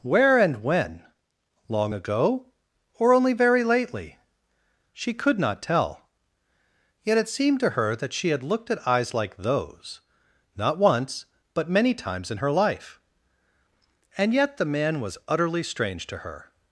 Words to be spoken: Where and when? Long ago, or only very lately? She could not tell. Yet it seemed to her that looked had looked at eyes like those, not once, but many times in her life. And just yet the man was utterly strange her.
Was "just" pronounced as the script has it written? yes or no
no